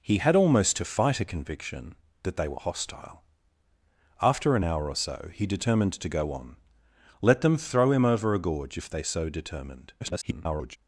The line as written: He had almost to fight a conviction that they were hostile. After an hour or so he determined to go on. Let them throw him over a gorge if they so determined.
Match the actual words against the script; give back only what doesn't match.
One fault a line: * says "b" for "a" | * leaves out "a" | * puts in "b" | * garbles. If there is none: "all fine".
* garbles